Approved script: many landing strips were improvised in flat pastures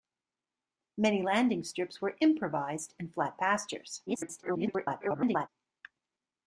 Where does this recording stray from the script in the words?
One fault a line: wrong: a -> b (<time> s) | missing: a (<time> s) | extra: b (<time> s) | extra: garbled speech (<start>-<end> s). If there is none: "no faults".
extra: garbled speech (4.1-5.5 s)